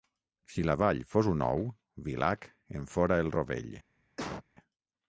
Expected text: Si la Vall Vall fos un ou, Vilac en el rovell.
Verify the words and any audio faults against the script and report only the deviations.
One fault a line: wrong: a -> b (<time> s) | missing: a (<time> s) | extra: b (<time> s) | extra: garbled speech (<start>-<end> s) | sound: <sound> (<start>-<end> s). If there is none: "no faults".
missing: Vall (1.0 s)
extra: fora (3.0 s)
sound: cough (4.2-4.4 s)